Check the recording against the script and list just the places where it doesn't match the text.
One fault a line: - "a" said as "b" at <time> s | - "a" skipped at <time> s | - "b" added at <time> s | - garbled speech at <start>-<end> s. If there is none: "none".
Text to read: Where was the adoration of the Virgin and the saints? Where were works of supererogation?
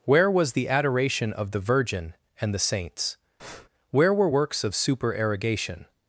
none